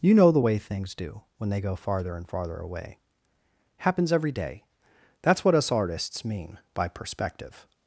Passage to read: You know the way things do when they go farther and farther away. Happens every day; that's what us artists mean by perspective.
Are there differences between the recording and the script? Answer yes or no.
no